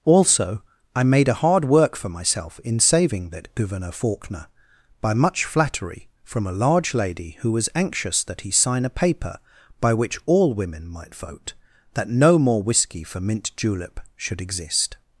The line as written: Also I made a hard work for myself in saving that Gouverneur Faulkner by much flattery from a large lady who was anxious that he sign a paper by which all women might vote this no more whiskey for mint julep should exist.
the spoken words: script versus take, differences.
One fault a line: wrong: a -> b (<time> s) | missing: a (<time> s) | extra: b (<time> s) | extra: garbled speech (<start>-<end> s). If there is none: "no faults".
wrong: this -> that (11.9 s)